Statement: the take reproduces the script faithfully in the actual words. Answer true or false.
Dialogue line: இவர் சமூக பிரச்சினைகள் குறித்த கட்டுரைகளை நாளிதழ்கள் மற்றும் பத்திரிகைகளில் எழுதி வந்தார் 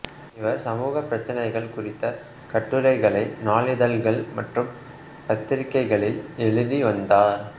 true